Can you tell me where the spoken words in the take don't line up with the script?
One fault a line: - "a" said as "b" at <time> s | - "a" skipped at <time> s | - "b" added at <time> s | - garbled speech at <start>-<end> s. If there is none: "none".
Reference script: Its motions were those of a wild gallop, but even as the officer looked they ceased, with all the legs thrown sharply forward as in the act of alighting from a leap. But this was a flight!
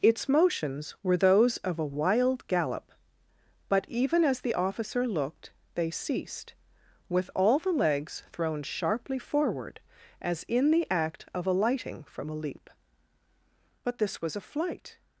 none